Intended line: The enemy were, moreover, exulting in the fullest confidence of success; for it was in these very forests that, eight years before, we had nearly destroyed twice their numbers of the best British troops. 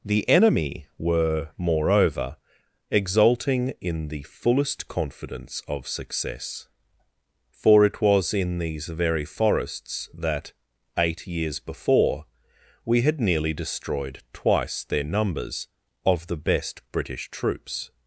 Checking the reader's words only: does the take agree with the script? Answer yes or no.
yes